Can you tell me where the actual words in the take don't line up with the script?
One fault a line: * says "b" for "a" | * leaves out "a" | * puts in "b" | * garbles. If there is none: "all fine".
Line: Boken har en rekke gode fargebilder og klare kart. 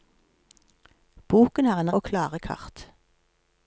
* leaves out "rekke gode fargebilder"